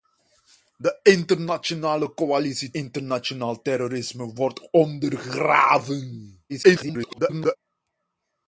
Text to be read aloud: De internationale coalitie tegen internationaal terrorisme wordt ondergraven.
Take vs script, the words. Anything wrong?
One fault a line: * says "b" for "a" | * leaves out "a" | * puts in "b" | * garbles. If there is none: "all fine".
* leaves out "tegen"
* garbles